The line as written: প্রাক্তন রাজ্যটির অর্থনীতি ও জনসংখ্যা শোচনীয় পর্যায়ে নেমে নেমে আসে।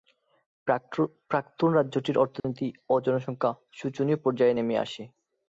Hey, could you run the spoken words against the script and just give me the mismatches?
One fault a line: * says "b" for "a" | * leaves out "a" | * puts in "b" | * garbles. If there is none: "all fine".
* leaves out "নেমে"